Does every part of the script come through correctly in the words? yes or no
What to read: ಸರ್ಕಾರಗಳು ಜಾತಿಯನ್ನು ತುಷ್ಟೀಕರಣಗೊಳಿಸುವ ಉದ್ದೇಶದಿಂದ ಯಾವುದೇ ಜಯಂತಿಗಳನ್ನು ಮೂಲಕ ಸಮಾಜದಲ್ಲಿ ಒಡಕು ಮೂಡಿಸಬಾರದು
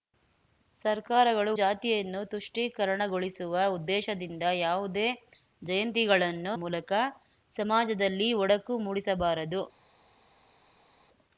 yes